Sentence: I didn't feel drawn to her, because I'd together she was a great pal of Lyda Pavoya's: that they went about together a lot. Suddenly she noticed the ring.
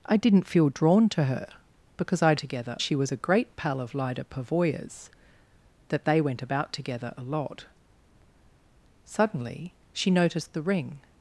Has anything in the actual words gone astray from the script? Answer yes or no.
no